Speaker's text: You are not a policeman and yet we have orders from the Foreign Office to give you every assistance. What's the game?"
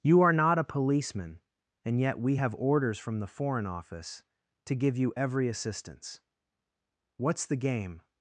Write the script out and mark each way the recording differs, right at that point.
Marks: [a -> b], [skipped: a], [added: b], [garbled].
You are not a policeman and yet we have orders from the Foreign Office to give you every assistance. What's the game?"